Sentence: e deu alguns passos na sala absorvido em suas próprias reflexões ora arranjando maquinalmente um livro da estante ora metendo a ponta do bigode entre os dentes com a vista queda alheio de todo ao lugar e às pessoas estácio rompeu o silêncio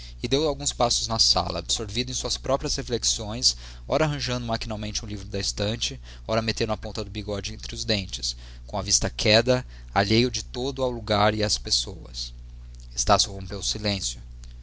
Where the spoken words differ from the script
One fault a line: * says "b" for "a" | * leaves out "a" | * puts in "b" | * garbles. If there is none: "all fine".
all fine